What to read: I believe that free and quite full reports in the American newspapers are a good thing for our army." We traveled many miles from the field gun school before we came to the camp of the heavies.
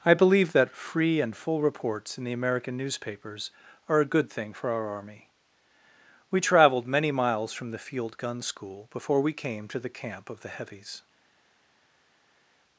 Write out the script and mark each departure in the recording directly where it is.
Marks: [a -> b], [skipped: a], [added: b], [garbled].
I believe that free and [skipped: quite] full reports in the American newspapers are a good thing for our army." We traveled many miles from the field gun school before we came to the camp of the heavies.